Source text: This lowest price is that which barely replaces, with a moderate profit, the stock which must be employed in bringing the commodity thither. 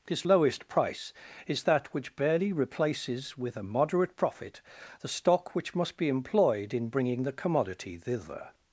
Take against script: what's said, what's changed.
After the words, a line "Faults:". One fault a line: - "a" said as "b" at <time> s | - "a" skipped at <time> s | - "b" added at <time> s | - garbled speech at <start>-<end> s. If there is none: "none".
This lowest price is that which barely replaces, with a moderate profit, the stock which must be employed in bringing the commodity thither.
Faults:
none